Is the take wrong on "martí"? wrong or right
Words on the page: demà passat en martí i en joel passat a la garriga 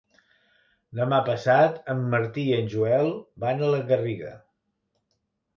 right